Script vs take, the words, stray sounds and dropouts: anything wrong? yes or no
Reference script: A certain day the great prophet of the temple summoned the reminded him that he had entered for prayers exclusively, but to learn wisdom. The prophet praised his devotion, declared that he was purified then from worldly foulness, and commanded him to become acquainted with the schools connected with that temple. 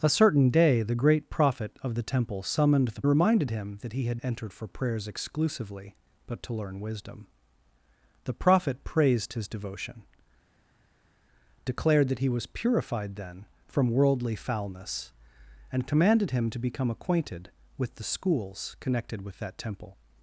no